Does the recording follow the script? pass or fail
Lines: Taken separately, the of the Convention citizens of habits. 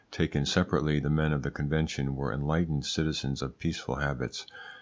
fail